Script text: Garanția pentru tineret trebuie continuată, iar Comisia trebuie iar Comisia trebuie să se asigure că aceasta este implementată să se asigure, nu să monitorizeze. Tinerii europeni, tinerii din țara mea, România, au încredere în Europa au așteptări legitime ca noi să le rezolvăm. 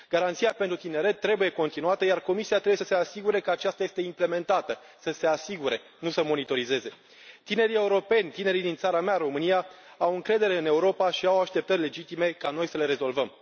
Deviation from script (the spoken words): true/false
true